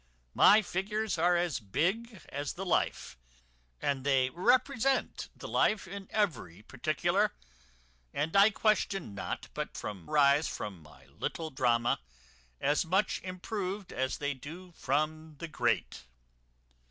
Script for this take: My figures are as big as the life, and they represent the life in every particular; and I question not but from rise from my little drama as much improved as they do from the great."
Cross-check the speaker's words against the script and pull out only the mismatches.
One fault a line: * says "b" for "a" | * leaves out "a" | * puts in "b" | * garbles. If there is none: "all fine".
all fine